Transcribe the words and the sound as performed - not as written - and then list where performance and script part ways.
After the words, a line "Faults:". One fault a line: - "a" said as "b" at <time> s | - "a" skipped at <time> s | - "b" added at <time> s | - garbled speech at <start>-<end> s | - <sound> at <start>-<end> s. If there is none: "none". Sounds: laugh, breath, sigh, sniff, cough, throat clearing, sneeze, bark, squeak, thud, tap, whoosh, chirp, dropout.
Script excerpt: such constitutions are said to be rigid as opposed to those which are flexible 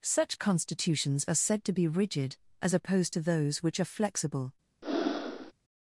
such constitutions are said to be rigid as opposed to those which are flexible
Faults:
- breath at 4.8-5.5 s